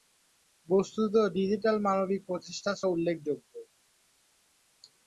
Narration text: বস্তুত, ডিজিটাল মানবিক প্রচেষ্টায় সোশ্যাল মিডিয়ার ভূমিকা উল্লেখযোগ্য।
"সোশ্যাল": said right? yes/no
no